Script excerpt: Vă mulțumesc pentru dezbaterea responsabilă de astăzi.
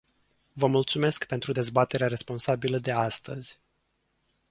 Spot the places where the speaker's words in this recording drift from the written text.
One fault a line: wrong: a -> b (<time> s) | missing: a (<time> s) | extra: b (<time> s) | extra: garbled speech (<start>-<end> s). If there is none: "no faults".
no faults